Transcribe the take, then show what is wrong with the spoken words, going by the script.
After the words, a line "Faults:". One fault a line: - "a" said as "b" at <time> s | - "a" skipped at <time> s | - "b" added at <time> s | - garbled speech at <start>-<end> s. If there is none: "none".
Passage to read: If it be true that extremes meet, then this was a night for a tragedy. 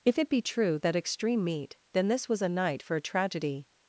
If it be true that extreme meet, then this was a night for a tragedy.
Faults:
- "extremes" said as "extreme" at 0.9 s